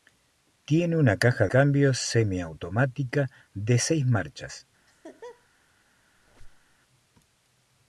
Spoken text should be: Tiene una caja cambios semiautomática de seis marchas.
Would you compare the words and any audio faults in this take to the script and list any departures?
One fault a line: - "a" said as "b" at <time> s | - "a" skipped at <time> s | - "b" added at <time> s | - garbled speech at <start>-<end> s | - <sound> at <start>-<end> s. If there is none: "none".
- laugh at 4.9-5.5 s
- squeak at 6.2-6.8 s